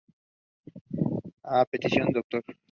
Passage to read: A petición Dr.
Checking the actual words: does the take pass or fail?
pass